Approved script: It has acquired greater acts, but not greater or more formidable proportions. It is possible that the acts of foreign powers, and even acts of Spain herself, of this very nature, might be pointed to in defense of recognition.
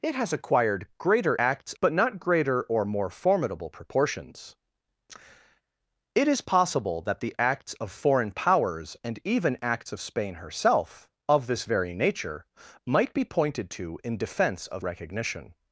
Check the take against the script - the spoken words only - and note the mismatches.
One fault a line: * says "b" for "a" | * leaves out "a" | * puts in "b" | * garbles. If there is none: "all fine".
all fine